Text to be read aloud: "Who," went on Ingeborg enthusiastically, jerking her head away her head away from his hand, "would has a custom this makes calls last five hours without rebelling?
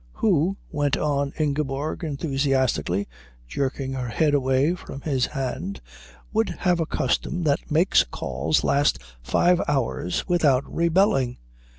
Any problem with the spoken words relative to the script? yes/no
yes